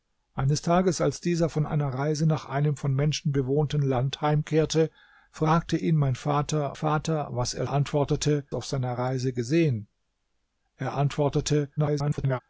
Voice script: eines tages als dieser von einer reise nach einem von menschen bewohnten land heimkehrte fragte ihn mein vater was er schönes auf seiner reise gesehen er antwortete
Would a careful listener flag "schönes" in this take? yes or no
yes